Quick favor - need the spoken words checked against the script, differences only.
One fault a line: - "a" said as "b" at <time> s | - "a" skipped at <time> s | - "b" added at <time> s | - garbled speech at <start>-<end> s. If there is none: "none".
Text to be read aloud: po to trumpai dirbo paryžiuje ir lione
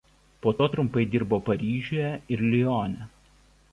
none